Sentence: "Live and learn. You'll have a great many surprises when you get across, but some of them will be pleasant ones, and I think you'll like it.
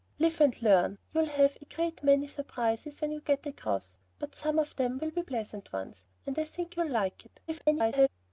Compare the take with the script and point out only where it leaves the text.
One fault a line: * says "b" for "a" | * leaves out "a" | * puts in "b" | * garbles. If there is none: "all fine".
* garbles